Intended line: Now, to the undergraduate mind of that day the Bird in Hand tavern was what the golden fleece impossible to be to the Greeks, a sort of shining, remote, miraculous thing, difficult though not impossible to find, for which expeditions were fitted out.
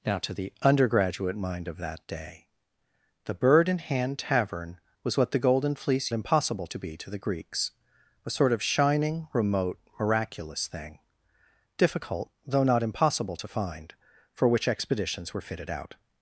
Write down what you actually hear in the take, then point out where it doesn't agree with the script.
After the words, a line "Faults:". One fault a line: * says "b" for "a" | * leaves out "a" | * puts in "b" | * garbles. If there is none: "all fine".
Now, to the undergraduate mind of that day the Bird in Hand tavern was what the golden fleece impossible to be to the Greeks, a sort of shining, remote, miraculous thing, difficult though not impossible to find, for which expeditions were fitted out.
Faults:
all fine